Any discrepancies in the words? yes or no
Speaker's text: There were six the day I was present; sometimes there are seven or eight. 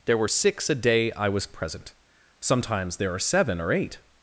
yes